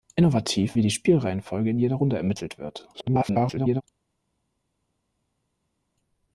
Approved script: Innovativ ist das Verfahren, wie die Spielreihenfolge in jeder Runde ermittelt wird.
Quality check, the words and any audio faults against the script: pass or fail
fail